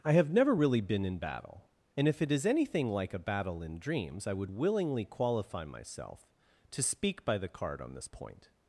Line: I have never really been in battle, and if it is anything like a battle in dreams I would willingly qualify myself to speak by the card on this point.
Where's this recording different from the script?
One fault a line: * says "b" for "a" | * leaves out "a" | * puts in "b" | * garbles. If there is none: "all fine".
all fine